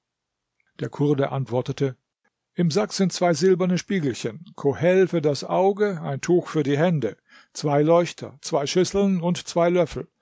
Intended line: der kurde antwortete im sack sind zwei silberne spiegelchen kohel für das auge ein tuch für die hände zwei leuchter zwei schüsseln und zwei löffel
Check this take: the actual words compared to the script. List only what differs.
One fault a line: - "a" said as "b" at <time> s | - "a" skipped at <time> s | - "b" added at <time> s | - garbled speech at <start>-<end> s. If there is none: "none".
none